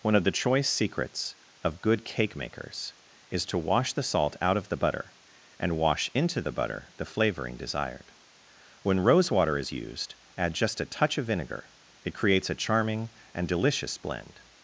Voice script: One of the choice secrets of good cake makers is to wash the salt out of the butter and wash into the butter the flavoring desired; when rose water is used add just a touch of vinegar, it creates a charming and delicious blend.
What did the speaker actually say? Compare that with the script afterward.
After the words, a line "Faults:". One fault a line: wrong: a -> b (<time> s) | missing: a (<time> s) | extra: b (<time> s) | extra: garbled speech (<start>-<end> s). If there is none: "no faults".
One of the choice secrets of good cake makers is to wash the salt out of the butter and wash into the butter the flavoring desired; when rose water is used add just a touch of vinegar, it creates a charming and delicious blend.
Faults:
no faults